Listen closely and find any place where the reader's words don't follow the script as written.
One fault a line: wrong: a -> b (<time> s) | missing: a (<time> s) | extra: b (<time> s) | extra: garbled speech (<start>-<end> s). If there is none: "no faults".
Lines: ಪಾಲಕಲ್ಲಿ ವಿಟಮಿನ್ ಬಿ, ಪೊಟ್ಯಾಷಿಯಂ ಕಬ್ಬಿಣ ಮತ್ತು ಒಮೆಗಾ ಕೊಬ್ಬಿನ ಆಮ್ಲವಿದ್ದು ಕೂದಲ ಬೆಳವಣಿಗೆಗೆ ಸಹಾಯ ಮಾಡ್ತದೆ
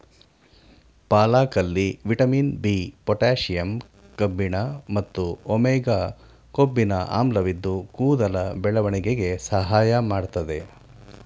no faults